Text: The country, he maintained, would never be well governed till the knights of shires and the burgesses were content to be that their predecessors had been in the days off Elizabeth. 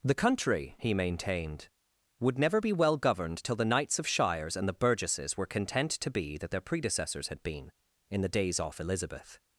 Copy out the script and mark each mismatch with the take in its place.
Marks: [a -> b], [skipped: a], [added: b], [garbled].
The country, he maintained, would never be well governed till the knights of shires and the burgesses were content to be that their predecessors had been in the days off Elizabeth.